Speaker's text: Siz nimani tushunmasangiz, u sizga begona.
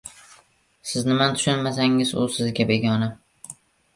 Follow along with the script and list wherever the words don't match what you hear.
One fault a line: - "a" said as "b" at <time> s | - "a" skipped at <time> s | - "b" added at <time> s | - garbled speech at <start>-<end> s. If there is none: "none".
none